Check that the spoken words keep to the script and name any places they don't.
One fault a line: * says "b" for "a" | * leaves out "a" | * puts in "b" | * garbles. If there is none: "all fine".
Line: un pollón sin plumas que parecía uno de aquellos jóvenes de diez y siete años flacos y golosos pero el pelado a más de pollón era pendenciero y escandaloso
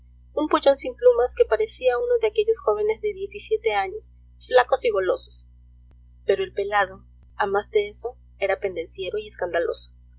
* says "eso" for "pollón"